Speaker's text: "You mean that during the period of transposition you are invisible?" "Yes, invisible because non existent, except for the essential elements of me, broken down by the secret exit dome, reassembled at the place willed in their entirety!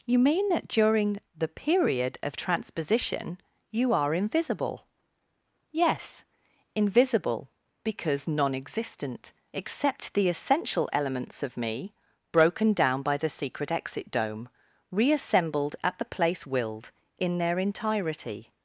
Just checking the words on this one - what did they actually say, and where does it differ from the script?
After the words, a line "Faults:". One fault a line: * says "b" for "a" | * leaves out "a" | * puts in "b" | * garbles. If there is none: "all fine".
"You mean that during the period of transposition you are invisible?" "Yes, invisible because non existent, except the essential elements of me, broken down by the secret exit dome, reassembled at the place willed in their entirety!
Faults:
* leaves out "for"